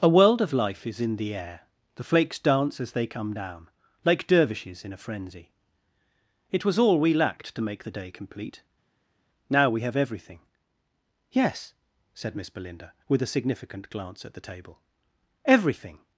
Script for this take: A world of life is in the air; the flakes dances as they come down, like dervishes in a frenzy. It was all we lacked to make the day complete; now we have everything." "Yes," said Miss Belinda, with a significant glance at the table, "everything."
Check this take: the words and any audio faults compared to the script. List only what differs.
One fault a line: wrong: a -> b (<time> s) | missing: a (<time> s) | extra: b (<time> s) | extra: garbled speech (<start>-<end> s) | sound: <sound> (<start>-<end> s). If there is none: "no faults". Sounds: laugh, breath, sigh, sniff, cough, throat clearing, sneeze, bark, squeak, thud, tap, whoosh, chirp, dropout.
wrong: dances -> dance (2.4 s)